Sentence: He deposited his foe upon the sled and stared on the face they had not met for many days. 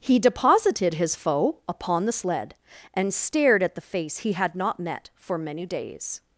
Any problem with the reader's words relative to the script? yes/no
yes